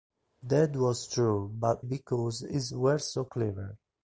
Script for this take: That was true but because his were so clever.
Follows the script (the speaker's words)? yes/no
yes